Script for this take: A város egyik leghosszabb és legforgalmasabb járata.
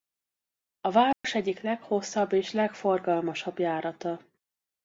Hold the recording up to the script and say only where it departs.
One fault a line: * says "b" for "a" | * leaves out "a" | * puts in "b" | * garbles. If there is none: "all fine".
all fine